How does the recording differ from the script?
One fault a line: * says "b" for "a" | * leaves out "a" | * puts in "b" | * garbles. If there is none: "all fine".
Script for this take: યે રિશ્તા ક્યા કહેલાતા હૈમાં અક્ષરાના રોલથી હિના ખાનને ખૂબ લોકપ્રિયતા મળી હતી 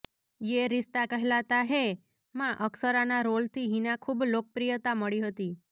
* leaves out "ક્યા"
* leaves out "ખાનને"